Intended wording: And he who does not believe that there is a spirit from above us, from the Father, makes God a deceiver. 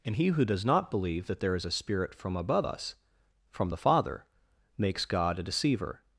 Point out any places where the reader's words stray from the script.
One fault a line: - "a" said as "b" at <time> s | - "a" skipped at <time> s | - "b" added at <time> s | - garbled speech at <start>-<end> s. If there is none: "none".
none